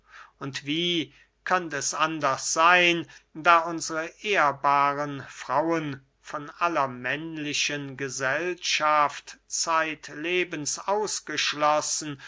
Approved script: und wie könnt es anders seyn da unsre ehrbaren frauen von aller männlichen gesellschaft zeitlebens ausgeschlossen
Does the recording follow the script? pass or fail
pass